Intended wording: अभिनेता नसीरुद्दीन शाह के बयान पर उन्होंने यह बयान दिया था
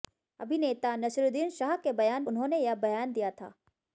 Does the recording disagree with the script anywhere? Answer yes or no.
yes